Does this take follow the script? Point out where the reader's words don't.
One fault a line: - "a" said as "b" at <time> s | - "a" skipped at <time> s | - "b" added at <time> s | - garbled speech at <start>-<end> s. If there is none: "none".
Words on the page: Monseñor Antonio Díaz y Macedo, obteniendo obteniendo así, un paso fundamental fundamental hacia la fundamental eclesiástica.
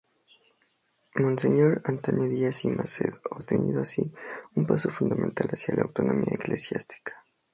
- "obteniendo" skipped at 3.8 s
- "fundamental" skipped at 5.5 s
- "fundamental" said as "autonomía" at 5.8 s